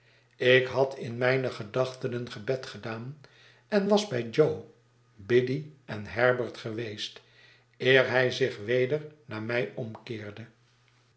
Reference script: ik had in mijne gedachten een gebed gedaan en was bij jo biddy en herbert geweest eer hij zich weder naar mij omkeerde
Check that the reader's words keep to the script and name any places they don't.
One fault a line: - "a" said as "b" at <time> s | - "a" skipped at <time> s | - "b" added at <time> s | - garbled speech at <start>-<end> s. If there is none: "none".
none